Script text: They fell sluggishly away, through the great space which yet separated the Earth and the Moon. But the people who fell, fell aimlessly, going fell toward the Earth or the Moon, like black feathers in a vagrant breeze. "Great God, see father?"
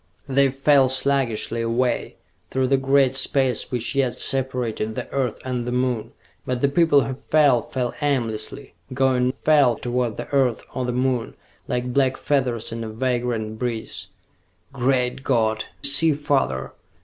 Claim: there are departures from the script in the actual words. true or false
false